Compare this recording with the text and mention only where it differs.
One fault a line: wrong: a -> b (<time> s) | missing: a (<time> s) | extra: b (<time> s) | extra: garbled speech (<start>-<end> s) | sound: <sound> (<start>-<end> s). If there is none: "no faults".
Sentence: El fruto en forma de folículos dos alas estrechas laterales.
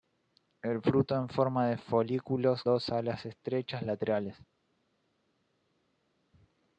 no faults